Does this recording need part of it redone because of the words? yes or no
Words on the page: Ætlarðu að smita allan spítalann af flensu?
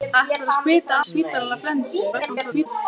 yes